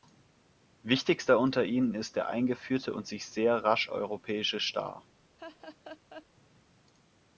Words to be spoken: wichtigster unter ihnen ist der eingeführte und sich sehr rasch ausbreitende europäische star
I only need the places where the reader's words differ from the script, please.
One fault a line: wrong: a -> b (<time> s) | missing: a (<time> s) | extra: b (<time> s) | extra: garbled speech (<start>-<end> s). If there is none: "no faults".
missing: ausbreitende (3.9 s)